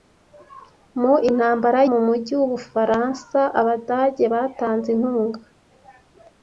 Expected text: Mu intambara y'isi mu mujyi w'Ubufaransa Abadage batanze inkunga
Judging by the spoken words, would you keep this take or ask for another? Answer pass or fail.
fail